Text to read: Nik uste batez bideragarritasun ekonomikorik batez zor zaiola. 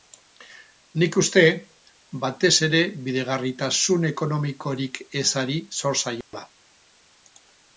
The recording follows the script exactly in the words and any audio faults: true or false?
false